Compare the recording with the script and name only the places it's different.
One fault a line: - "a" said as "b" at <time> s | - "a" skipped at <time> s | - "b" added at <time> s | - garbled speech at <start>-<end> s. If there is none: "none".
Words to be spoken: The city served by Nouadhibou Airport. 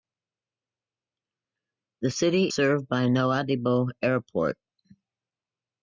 none